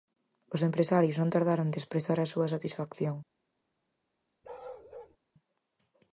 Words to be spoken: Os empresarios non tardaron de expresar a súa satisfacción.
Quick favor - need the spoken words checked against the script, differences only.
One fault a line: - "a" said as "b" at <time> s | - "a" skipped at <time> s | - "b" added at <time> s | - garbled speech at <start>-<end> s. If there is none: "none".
none